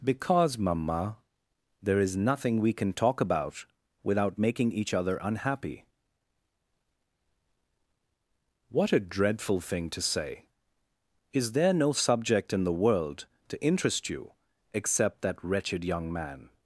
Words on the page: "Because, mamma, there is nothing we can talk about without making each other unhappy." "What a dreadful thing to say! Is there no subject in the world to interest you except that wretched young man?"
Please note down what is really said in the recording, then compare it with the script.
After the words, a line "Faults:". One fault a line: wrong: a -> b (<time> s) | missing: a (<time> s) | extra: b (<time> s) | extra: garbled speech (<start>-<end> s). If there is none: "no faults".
"Because, mamma, there is nothing we can talk about without making each other unhappy." "What a dreadful thing to say! Is there no subject in the world to interest you except that wretched young man?"
Faults:
no faults